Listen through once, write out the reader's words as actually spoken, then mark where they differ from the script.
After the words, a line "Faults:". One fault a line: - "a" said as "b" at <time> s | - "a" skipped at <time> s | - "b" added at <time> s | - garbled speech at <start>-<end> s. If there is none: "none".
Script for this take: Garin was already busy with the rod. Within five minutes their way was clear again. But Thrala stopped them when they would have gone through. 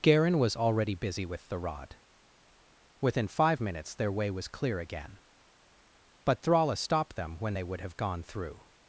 Garin was already busy with the rod. Within five minutes their way was clear again. But Thrala stopped them when they would have gone through.
Faults:
none